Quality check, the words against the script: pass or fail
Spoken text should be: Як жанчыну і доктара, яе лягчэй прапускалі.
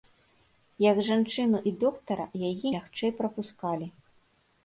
pass